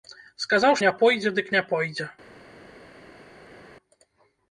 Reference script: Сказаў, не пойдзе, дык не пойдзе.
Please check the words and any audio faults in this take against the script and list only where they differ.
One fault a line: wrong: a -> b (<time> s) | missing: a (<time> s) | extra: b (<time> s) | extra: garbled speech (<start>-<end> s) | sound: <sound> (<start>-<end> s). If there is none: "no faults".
no faults